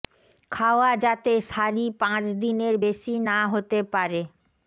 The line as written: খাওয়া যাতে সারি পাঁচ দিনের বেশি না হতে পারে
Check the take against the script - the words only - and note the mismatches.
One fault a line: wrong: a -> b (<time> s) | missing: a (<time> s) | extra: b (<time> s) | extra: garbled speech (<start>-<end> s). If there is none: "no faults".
no faults